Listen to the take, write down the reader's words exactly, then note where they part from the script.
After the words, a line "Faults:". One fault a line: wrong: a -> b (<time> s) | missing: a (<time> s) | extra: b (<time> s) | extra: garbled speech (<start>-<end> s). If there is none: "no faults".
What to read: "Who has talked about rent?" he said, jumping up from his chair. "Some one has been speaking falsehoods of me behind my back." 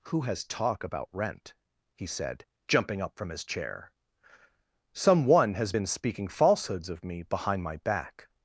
"Who has talk about rent?" he said, jumping up from his chair. "Some one has been speaking falsehoods of me behind my back."
Faults:
wrong: talked -> talk (0.4 s)